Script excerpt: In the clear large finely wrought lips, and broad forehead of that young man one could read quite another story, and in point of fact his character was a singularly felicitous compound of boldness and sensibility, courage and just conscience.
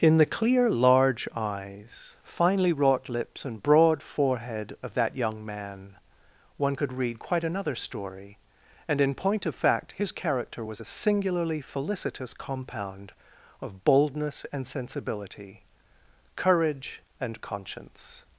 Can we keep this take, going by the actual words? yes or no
no